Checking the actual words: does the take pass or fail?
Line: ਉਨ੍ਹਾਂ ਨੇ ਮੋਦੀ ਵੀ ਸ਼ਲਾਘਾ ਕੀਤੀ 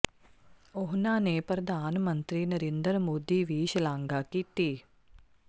fail